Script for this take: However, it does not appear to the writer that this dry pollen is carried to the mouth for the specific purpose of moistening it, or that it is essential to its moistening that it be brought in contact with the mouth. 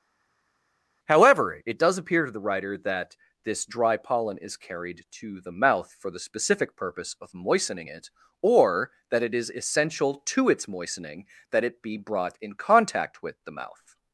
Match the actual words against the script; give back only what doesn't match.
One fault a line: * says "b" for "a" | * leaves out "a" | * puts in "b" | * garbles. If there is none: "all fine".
* leaves out "not"